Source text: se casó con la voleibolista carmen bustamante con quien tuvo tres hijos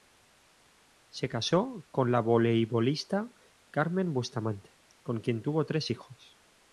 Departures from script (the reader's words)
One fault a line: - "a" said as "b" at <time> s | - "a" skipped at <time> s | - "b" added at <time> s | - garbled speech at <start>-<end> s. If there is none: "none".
none